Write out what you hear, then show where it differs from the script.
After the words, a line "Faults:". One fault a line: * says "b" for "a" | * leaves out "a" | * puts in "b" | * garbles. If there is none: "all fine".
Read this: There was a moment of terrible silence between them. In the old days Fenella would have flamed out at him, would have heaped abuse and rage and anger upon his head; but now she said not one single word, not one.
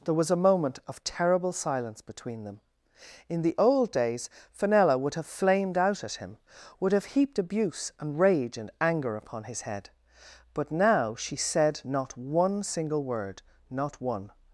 There was a moment of terrible silence between them. In the old days Fenella would have flamed out at him, would have heaped abuse and rage and anger upon his head; but now she said not one single word, not one.
Faults:
all fine